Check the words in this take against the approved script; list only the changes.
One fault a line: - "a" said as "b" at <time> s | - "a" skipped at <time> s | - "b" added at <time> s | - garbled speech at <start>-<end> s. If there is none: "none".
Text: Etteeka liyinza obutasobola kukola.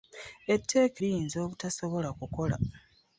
none